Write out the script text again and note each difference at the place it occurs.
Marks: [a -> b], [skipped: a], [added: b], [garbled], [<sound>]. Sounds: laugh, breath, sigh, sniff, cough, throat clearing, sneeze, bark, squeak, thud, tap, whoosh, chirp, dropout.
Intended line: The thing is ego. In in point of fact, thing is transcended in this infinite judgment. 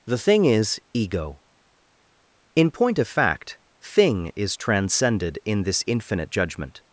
The thing is ego. In [skipped: in] point of fact, thing is transcended in this infinite judgment.